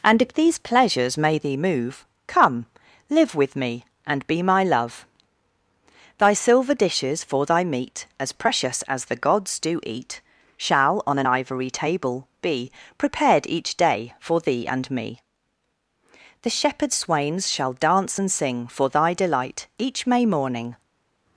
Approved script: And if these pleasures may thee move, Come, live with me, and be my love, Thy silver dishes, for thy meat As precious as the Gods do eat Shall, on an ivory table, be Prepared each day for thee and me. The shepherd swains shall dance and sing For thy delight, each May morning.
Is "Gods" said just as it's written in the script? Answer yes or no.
yes